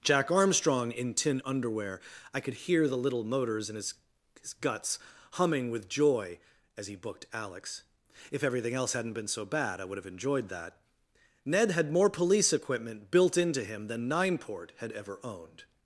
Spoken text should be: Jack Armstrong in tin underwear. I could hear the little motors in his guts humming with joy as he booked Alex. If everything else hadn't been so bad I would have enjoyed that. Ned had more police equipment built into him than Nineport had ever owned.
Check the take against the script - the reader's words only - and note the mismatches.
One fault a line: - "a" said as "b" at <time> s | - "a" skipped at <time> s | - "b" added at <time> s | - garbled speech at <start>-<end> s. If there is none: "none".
- "his" added at 4.4 s